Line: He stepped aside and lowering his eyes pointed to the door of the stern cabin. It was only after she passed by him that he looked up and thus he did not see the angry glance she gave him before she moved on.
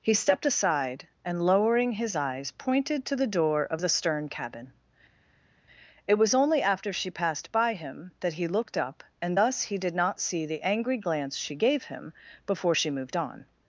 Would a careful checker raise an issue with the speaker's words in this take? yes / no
no